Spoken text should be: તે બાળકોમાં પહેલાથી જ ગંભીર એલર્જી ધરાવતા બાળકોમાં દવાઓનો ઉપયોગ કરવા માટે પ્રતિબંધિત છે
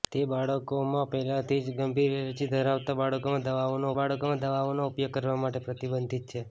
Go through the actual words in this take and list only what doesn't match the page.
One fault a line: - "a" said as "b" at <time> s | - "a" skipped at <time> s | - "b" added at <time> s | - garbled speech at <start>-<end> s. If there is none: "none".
- "બાળકોમાં દવાઓનો" added at 4.0 s